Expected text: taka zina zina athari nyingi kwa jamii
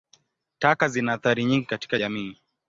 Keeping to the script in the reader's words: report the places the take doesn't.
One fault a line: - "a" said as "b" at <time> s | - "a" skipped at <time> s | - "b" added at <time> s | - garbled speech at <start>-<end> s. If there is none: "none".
- "zina" skipped at 1.1 s
- "kwa" said as "katika" at 1.6 s